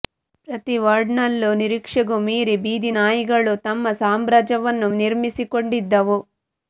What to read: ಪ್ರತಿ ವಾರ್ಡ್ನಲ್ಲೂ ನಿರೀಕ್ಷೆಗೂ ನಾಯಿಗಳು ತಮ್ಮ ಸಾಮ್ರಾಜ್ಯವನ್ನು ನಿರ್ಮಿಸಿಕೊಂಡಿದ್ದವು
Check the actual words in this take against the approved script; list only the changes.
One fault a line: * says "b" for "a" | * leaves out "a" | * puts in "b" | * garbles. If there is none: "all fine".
* puts in "ಮೀರಿ ಬೀದಿ"